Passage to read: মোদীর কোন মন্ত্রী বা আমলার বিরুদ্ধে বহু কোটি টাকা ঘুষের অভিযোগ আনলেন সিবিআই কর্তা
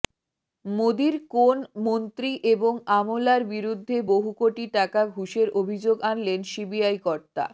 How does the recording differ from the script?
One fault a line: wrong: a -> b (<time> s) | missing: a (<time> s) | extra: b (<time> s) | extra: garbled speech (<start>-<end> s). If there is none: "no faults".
wrong: বা -> এবং (2.5 s)